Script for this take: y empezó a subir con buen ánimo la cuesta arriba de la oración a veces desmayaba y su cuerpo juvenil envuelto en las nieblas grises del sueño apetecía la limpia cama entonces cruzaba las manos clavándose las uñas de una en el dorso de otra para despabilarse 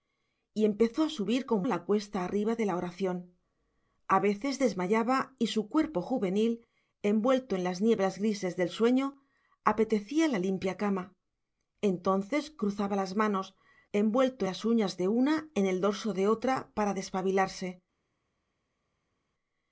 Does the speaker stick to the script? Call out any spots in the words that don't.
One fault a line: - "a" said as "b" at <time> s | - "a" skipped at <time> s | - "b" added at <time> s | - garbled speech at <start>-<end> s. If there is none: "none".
- "buen ánimo" skipped at 1.6 s
- "clavándose" said as "envuelto" at 13.9 s